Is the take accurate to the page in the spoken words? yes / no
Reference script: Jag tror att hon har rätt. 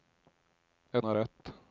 no